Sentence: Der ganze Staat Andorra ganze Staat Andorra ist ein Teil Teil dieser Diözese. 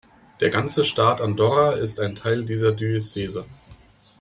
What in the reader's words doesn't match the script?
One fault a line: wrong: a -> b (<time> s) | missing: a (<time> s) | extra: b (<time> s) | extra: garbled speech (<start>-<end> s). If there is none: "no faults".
missing: ganze Staat Andorra (1.7 s)
missing: Teil (2.5 s)